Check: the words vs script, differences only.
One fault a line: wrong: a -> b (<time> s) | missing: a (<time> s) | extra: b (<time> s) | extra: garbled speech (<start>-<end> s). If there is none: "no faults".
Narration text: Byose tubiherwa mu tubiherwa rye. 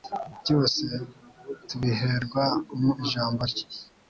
wrong: tubiherwa -> ijambo (3.0 s)